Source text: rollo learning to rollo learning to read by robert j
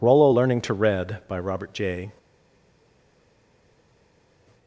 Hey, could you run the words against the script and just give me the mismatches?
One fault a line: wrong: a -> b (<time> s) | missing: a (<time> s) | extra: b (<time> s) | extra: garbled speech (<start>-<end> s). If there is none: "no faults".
missing: rollo learning to (0.7 s)